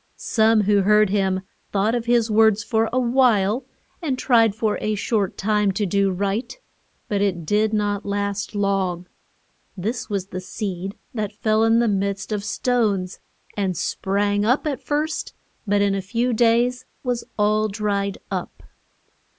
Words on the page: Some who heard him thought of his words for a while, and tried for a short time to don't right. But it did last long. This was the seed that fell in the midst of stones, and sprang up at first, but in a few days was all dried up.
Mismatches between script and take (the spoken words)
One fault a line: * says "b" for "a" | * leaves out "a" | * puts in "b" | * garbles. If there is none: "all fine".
* says "do" for "don't"
* puts in "not"